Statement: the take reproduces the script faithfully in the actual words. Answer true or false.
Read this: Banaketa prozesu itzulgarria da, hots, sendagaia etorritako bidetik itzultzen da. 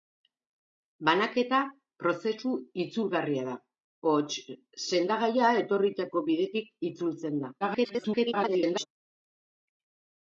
false